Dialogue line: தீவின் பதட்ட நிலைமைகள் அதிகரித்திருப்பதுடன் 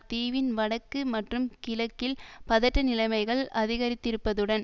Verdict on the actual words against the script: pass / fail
fail